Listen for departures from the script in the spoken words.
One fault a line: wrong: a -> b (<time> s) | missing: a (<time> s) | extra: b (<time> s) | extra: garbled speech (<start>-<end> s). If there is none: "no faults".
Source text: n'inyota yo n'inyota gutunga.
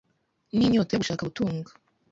wrong: n'inyota -> gushaka (1.0 s)